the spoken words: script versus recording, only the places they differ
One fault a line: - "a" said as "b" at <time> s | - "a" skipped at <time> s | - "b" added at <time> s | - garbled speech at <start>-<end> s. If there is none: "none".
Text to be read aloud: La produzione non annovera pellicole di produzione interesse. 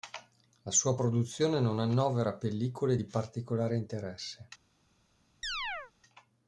- "sua" added at 0.7 s
- "produzione" said as "particolare" at 3.0 s